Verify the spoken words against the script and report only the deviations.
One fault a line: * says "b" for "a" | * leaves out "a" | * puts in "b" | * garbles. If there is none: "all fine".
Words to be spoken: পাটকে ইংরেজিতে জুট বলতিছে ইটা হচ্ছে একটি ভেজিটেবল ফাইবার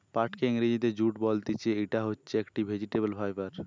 all fine